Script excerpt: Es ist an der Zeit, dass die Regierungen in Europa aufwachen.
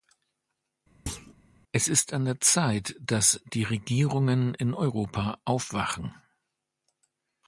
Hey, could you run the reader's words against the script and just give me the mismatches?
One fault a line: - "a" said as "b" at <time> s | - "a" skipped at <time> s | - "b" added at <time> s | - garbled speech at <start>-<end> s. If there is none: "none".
none